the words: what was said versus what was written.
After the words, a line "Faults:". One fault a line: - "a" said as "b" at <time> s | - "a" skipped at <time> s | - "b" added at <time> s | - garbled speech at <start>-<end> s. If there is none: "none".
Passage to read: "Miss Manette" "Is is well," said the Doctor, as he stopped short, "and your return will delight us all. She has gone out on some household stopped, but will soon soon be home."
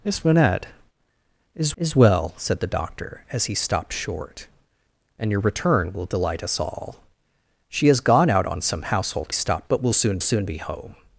"Miss Manette" "Is is well," said the Doctor, as he stopped short, "and your return will delight us all. She has gone out on some household stopped, but will soon soon be home."
Faults:
none